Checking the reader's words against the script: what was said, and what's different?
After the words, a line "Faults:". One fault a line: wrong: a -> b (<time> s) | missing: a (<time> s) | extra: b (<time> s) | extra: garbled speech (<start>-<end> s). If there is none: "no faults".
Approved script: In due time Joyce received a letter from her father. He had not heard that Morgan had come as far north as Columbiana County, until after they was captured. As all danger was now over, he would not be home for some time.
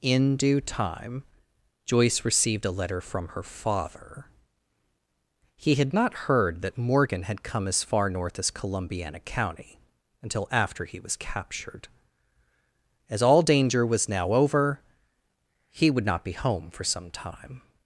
In due time Joyce received a letter from her father. He had not heard that Morgan had come as far north as Columbiana County, until after he was captured. As all danger was now over, he would not be home for some time.
Faults:
wrong: they -> he (10.8 s)